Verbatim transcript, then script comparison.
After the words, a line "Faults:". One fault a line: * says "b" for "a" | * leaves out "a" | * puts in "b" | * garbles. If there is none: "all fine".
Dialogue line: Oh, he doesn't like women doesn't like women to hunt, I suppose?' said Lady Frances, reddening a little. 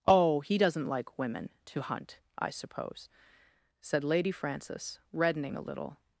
Oh, he doesn't like women to hunt, I suppose?' said Lady Frances, reddening a little.
Faults:
* leaves out "doesn't like women"